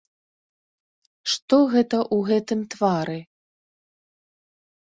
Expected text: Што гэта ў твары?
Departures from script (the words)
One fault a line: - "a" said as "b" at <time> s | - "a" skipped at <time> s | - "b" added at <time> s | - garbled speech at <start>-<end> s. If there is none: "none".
- "гэтым" added at 2.3 s